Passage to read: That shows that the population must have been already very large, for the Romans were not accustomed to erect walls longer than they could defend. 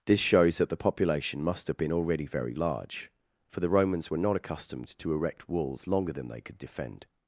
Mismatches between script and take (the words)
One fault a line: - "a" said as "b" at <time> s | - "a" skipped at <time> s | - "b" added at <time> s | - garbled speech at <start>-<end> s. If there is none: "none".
- "That" said as "This" at 0.1 s